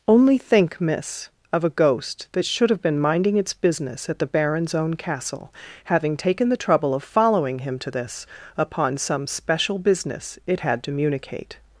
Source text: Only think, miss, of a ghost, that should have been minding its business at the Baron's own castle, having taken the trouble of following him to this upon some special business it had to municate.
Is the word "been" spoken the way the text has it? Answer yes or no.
yes